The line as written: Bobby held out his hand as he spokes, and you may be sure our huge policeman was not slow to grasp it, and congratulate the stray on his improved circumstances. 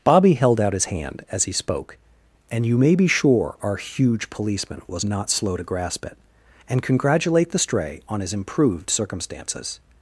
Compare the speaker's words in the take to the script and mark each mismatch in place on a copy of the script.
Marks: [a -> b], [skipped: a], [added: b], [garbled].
Bobby held out his hand as he [spokes, -> spoke] and you may be sure our huge policeman was not slow to grasp it, and congratulate the stray on his improved circumstances.